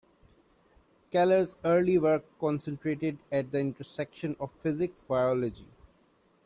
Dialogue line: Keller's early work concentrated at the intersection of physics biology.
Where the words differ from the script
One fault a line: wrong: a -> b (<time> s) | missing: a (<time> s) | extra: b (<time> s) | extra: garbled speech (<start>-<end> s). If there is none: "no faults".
no faults